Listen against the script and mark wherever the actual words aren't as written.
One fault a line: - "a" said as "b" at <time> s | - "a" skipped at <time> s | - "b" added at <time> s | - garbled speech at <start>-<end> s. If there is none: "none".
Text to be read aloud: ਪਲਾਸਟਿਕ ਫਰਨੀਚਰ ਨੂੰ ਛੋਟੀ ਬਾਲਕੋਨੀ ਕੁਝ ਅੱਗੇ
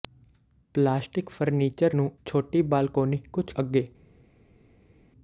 none